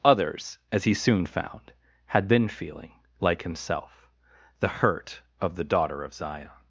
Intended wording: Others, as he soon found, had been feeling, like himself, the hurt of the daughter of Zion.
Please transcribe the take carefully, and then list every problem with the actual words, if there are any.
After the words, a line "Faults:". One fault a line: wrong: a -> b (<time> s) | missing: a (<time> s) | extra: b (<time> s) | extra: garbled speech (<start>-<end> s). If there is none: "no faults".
Others, as he soon found, had been feeling, like himself, the hurt of the daughter of Zion.
Faults:
no faults